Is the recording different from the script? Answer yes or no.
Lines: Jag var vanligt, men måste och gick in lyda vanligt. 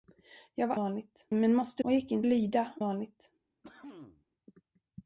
no